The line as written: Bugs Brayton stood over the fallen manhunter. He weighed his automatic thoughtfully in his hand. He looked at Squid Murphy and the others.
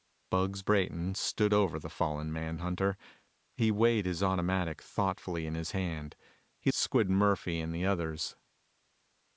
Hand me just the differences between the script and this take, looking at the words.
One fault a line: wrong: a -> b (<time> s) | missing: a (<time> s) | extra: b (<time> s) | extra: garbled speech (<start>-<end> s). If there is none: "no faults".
missing: looked at (6.7 s)